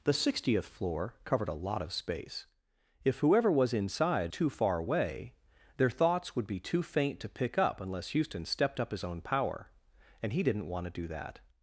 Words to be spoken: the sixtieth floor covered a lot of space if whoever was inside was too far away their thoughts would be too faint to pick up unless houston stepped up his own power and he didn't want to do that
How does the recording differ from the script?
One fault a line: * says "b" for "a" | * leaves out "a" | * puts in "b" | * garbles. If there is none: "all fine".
* leaves out "was"